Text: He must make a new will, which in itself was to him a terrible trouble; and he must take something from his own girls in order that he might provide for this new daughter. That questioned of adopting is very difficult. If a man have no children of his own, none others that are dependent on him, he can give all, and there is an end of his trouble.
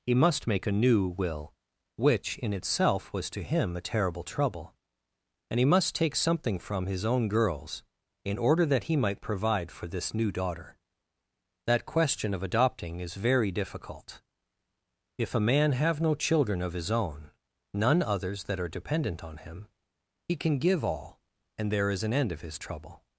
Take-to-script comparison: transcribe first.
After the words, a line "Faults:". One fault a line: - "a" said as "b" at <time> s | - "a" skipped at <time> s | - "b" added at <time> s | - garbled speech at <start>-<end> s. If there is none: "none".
He must make a new will, which in itself was to him a terrible trouble; and he must take something from his own girls in order that he might provide for this new daughter. That question of adopting is very difficult. If a man have no children of his own, none others that are dependent on him, he can give all, and there is an end of his trouble.
Faults:
- "questioned" said as "question" at 11.9 s